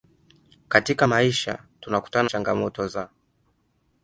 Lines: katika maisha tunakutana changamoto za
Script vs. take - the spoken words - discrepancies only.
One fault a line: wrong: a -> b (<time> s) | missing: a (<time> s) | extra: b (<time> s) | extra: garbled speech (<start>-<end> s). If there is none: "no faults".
no faults